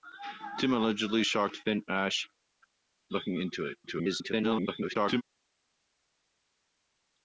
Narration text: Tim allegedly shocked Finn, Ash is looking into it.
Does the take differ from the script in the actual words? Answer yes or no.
yes